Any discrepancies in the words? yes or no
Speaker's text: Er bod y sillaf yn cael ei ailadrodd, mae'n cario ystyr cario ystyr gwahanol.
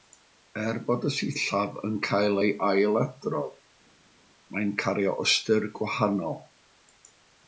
yes